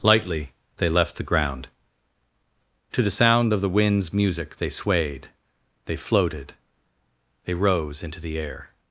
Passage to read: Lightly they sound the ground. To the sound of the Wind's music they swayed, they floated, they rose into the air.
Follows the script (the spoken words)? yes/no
no